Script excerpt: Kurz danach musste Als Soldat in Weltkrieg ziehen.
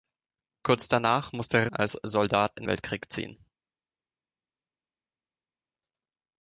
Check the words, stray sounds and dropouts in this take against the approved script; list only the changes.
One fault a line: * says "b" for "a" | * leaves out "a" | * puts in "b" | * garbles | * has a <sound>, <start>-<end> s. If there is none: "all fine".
all fine